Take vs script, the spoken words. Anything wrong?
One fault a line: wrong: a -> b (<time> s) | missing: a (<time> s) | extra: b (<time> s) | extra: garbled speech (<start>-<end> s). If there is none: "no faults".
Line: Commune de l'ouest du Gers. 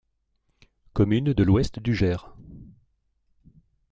no faults